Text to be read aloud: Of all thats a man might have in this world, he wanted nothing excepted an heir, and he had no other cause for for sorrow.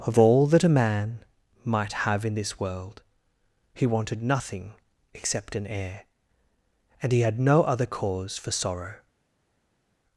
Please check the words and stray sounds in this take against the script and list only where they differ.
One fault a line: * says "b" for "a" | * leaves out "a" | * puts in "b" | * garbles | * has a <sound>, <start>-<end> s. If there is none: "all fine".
* says "that" for "thats"
* says "except" for "excepted"
* leaves out "for"